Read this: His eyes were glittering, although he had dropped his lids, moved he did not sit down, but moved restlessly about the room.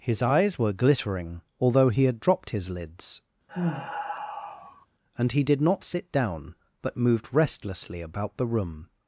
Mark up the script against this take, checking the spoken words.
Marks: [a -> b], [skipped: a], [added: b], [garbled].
His eyes were glittering, although he had dropped his lids, [moved -> and] he did not sit down, but moved restlessly about the room.